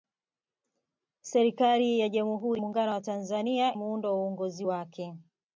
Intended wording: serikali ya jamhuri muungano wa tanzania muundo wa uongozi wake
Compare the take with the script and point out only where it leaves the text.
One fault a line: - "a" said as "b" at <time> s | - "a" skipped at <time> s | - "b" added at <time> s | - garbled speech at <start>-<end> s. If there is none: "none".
none